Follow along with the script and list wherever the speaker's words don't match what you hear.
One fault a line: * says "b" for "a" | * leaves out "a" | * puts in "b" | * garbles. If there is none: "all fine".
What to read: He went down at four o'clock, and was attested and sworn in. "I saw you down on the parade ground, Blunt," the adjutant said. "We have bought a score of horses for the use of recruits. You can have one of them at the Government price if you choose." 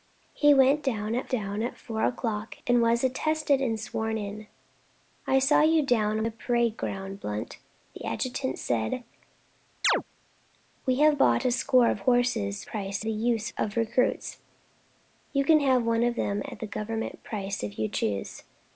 * puts in "down at"
* leaves out "on"
* says "price" for "for"